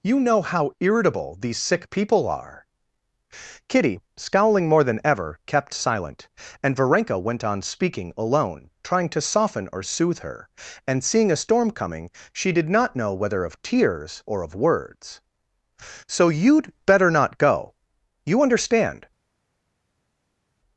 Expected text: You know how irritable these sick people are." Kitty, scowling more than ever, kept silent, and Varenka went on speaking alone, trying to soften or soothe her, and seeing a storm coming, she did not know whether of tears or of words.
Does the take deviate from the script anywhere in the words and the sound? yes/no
yes